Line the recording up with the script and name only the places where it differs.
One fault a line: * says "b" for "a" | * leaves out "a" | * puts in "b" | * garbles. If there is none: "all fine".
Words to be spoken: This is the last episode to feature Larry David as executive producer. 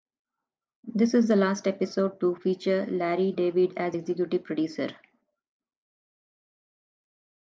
all fine